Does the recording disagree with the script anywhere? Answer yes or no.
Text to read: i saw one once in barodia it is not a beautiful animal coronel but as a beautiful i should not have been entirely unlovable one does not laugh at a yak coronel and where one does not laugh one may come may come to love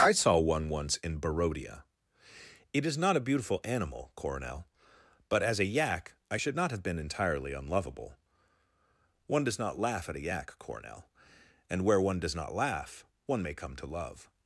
yes